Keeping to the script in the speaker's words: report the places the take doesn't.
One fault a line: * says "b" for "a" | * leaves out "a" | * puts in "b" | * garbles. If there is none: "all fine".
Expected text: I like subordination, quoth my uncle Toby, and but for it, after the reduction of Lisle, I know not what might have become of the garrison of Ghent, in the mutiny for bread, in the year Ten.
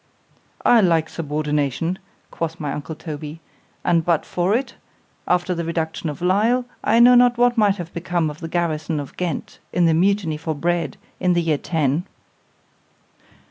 all fine